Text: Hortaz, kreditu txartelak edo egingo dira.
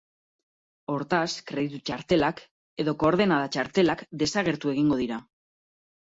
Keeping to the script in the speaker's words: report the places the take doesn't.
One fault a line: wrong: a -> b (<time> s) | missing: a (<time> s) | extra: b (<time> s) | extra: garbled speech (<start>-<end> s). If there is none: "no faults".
extra: koordenada txartelak desagertu (3.0 s)